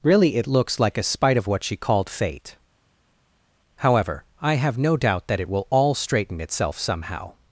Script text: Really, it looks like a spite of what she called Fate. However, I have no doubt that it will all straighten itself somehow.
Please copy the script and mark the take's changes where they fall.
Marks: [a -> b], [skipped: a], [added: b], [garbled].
Really, it looks like a spite of what she called Fate. However, I have no doubt that it will all straighten itself somehow.